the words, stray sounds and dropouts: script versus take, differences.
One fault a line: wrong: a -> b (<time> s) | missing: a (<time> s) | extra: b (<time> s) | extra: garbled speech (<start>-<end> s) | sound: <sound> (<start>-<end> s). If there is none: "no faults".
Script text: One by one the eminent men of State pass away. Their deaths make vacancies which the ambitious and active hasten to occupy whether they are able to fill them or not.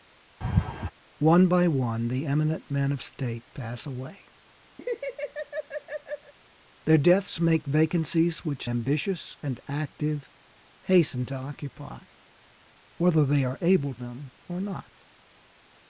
sound: laugh (0.4-0.9 s)
sound: laugh (4.8-6.3 s)
missing: the (8.7 s)
missing: to fill (13.9 s)